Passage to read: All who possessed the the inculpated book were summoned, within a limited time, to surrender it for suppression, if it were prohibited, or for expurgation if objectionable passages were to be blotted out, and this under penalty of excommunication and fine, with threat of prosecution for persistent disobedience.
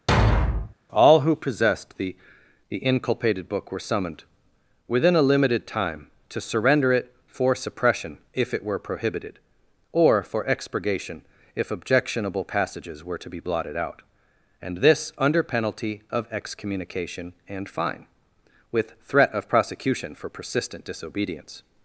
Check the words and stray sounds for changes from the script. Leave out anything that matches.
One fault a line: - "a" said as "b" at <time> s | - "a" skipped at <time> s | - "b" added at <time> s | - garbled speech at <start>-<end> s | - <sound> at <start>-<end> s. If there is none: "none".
- thud at 0.1-0.7 s